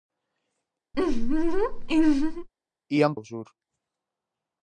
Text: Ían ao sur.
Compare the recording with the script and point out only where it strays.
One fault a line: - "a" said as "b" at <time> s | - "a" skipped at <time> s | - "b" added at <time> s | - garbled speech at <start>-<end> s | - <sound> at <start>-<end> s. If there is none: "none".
- laugh at 0.9-2.5 s